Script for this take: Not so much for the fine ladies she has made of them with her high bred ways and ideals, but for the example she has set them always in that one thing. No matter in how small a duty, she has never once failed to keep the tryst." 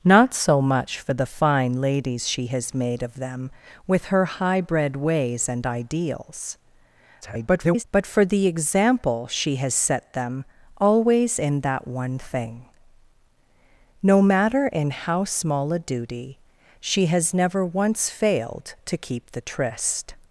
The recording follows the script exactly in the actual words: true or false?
false